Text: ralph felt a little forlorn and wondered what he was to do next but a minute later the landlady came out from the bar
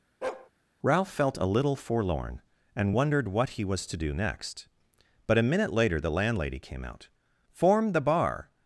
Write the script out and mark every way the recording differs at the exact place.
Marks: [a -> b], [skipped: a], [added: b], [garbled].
ralph felt a little forlorn and wondered what he was to do next but a minute later the landlady came out [from -> form] the bar